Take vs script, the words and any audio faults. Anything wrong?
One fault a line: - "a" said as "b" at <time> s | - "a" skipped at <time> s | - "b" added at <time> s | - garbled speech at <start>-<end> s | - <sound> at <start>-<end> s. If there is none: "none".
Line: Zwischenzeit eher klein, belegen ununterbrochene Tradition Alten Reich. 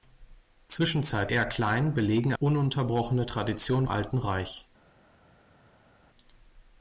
none